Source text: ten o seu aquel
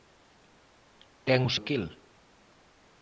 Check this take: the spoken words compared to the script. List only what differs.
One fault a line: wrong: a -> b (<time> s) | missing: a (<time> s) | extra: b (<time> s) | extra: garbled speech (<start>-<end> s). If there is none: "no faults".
missing: seu (1.5 s)